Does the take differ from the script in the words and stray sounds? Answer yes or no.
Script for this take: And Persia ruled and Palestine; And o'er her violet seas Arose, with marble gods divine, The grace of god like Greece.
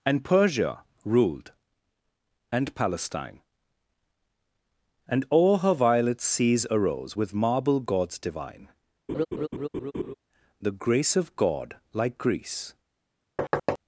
yes